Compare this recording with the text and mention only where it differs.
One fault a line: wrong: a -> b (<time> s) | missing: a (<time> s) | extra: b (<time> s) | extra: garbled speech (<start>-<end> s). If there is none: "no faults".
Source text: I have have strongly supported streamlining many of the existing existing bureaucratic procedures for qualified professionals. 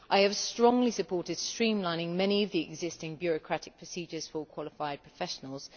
missing: have (0.3 s)
missing: existing (3.2 s)